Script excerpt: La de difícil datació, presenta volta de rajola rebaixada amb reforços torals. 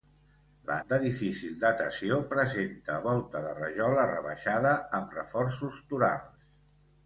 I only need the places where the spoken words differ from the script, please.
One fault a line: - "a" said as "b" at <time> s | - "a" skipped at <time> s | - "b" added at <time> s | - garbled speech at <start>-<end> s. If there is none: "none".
none